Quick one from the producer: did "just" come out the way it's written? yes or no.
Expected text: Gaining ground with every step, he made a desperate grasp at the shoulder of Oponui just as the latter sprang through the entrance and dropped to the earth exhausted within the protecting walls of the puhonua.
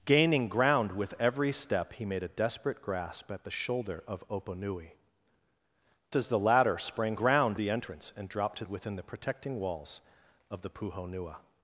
no